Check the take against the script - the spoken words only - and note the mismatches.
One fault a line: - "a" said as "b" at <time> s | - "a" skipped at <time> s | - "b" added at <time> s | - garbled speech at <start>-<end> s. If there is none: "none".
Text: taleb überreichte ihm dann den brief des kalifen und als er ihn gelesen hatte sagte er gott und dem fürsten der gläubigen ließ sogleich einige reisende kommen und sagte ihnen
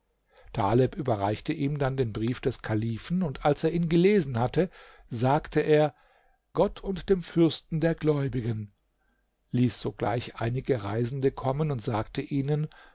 none